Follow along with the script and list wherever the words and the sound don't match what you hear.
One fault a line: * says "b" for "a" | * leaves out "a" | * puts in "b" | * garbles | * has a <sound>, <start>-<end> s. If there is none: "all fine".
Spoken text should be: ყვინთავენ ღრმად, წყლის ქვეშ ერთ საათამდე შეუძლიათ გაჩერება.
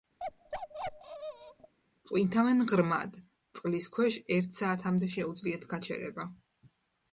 * has a bark, 0.2-1.7 s